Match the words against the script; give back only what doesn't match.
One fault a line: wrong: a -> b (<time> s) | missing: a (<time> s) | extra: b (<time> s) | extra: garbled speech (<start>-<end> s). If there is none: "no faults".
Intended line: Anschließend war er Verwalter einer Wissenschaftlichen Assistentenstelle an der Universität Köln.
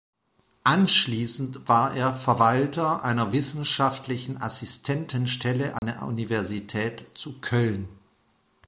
extra: zu (7.1 s)